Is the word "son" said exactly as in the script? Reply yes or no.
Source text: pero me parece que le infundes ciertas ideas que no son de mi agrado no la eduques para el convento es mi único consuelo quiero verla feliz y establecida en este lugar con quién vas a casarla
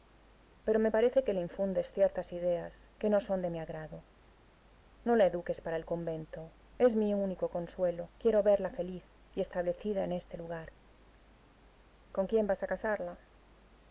yes